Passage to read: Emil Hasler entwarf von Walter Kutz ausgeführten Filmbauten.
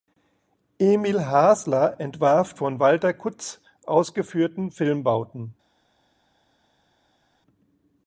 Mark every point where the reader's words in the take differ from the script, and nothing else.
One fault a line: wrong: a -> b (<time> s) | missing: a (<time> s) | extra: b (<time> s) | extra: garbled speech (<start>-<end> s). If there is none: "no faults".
no faults